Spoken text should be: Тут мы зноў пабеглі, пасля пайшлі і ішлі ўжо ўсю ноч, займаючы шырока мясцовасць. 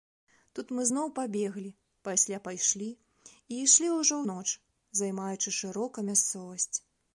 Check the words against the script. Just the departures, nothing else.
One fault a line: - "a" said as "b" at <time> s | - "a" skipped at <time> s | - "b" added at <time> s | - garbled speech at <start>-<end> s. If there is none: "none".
- "ўсю" skipped at 4.2 s